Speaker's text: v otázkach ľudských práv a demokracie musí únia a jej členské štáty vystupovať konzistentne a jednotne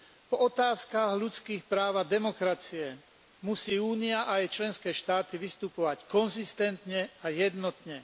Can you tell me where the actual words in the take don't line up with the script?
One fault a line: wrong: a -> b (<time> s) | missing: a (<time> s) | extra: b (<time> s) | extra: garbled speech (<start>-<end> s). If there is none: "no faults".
no faults